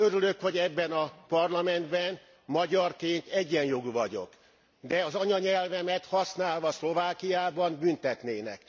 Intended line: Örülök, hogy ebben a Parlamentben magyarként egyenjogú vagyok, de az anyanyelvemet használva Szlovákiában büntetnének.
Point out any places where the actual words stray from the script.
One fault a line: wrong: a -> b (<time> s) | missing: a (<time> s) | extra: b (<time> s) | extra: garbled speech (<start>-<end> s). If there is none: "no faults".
no faults